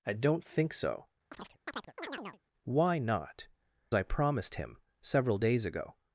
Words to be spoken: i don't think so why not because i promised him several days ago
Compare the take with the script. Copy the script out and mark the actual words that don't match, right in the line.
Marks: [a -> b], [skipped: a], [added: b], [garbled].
i don't think so why not [skipped: because] i promised him several days ago